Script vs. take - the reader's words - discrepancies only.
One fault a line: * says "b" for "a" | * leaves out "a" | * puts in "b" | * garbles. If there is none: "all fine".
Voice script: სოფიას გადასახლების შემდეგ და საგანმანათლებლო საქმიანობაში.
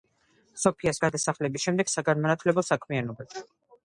all fine